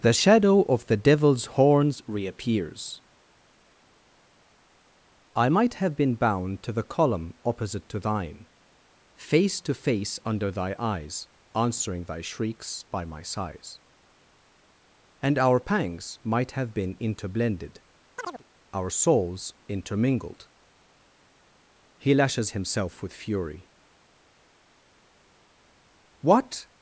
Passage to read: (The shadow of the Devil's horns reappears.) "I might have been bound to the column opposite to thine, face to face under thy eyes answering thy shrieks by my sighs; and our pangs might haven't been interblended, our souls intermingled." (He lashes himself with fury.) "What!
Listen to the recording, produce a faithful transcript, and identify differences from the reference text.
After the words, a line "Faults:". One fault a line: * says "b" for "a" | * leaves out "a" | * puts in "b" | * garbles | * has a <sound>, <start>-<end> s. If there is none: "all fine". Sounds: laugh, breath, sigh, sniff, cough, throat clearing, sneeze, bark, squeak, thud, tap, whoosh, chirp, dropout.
(The shadow of the Devil's horns reappears.) "I might have been bound to the column opposite to thine, face to face under thy eyes answering thy shrieks by my sighs; and our pangs might have been interblended, our souls intermingled." (He lashes himself with fury.) "What!
Faults:
* says "have" for "haven't"
* has a chirp, 18.2-18.4 s